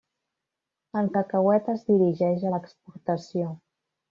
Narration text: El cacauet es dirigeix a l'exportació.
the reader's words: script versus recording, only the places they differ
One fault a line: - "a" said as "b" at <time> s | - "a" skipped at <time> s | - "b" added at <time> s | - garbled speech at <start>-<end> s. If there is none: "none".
none